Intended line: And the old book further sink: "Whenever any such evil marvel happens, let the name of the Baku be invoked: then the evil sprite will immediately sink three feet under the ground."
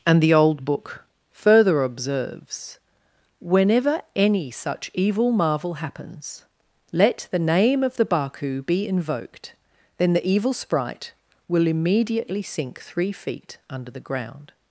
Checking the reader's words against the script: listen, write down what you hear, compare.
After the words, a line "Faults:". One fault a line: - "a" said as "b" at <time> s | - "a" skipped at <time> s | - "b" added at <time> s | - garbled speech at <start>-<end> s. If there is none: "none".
And the old book further observes: "Whenever any such evil marvel happens, let the name of the Baku be invoked: then the evil sprite will immediately sink three feet under the ground."
Faults:
- "sink" said as "observes" at 1.8 s